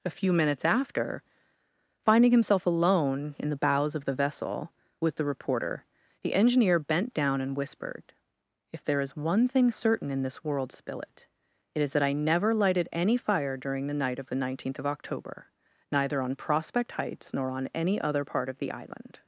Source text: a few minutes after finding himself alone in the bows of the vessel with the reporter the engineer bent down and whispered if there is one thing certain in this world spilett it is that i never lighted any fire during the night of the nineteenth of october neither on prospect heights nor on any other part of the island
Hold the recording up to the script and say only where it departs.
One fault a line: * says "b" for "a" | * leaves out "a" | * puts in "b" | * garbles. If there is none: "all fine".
all fine